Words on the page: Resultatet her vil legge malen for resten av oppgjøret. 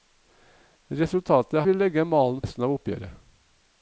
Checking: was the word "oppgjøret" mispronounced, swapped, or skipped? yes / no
no